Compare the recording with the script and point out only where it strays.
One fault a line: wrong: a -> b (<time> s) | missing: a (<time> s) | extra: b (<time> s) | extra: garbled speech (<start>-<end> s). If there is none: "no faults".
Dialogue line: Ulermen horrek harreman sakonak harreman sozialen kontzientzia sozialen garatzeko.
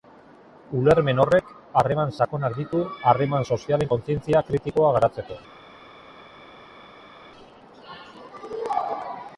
extra: ditu (2.6 s)
wrong: sozialen -> kritikoa (4.5 s)